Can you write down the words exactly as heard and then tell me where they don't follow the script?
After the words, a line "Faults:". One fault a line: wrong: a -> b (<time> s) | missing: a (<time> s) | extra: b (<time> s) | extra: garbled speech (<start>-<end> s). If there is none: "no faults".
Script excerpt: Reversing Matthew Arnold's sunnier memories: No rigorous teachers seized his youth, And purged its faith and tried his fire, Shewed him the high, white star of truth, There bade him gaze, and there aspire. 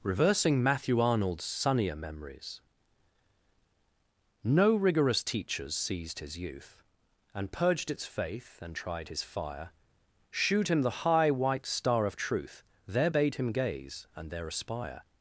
Reversing Matthew Arnold's sunnier memories: No rigorous teachers seized his youth, And purged its faith and tried his fire, Shewed him the high, white star of truth, There bade him gaze, and there aspire.
Faults:
no faults